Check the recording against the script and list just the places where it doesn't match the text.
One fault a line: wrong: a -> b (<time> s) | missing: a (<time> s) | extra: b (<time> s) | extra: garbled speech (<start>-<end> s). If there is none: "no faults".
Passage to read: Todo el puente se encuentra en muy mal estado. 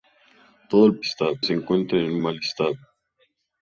wrong: puente -> estado (1.0 s)
missing: muy (2.2 s)